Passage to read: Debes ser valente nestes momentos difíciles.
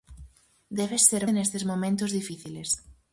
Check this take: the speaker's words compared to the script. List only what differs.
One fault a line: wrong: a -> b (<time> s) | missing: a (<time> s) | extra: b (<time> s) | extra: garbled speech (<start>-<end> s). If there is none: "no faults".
missing: valente (1.2 s)